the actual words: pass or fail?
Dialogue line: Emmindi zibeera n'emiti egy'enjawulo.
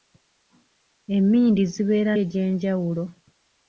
fail